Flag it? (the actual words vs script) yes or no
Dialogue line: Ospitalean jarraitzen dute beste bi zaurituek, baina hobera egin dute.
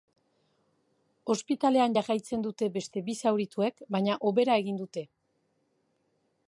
no